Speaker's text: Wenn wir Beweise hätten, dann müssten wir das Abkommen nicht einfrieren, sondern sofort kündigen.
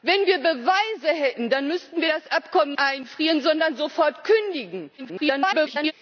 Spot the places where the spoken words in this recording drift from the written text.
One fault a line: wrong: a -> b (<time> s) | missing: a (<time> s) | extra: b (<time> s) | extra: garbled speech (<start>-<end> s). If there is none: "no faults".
missing: nicht (2.7 s)
extra: garbled speech (5.0-5.9 s)